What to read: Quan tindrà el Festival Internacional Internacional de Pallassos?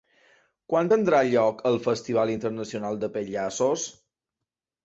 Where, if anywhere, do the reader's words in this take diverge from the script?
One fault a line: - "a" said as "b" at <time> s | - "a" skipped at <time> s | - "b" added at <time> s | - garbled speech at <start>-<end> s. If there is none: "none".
- "lloc" added at 1.3 s
- "Internacional" skipped at 3.0 s